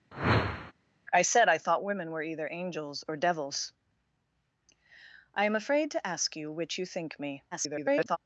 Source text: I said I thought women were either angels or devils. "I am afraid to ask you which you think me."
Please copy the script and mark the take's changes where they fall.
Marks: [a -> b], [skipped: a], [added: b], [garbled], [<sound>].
[whoosh] I said I thought women were either angels or devils. "I am afraid to ask you which you think me." [garbled]